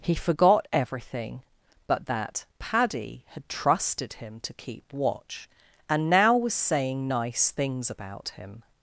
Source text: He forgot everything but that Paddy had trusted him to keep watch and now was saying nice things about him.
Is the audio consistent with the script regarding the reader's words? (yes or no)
yes